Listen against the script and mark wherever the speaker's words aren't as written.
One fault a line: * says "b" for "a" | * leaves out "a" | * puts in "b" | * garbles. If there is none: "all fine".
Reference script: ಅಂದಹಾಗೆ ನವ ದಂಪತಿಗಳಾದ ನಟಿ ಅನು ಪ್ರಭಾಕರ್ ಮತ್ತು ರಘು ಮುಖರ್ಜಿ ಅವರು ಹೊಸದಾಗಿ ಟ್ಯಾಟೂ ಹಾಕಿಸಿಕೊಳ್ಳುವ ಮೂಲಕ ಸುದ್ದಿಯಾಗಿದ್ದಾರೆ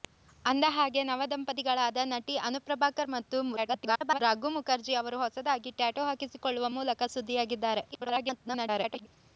* garbles
* garbles